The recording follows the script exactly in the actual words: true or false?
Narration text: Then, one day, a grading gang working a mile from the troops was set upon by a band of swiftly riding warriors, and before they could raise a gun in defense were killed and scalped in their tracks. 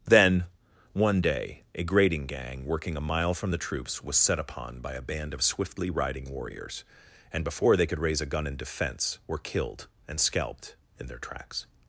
true